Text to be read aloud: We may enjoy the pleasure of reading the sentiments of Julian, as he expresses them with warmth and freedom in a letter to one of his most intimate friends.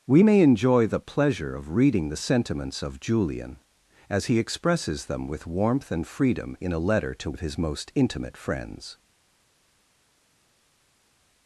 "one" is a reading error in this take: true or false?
true